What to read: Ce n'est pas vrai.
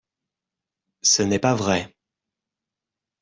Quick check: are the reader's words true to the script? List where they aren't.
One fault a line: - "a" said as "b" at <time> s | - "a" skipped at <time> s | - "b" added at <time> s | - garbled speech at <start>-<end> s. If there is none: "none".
none